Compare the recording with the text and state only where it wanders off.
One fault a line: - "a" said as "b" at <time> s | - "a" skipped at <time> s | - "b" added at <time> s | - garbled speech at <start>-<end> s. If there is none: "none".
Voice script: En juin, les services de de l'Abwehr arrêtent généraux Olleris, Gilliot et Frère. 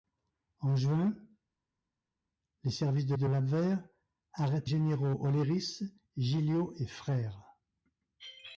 none